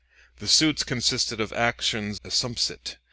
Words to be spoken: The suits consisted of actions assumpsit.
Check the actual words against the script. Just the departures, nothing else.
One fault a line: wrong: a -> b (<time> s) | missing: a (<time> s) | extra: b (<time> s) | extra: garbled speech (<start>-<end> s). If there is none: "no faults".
no faults